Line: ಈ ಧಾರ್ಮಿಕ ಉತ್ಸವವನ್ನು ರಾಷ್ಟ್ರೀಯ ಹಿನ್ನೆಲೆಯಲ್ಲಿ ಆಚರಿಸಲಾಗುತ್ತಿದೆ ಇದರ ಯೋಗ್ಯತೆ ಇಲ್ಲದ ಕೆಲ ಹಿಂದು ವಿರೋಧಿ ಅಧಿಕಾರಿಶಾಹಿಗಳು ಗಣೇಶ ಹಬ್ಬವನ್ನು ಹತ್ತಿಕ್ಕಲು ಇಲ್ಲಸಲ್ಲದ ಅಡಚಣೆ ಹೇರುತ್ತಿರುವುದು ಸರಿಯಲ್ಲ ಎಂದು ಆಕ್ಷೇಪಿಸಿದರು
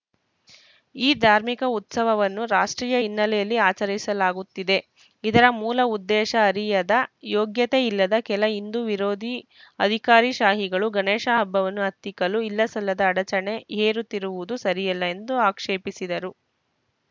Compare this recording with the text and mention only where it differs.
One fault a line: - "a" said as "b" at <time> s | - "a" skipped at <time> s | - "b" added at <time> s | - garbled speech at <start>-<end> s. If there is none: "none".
- "ಮೂಲ ಉದ್ದೇಶ ಅರಿಯದ" added at 5.6 s